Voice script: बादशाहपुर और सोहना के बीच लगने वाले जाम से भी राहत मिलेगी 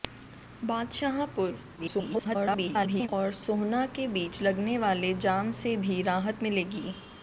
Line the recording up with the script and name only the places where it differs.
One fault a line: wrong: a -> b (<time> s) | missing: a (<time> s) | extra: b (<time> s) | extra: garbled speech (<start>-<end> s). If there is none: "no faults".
extra: garbled speech (1.8-3.1 s)